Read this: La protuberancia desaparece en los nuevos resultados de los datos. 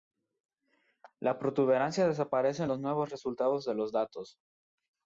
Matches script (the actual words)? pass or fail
pass